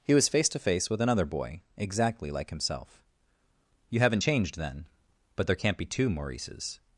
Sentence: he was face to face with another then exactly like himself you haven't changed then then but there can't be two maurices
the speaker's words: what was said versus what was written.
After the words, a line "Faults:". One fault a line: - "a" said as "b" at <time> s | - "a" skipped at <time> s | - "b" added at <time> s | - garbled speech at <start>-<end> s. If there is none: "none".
he was face to face with another boy exactly like himself you haven't changed then but there can't be two maurices
Faults:
- "then" said as "boy" at 1.2 s
- "then" skipped at 4.9 s